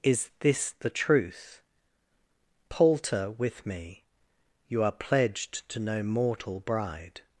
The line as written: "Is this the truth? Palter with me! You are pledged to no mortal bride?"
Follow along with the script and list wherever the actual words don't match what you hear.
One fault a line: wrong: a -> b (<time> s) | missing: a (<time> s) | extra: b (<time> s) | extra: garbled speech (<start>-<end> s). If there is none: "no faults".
no faults